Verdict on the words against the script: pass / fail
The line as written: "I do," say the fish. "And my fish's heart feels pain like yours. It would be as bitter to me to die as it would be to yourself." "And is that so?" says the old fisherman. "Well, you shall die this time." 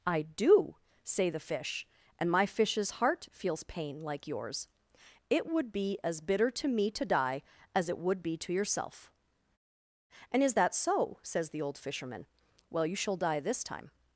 pass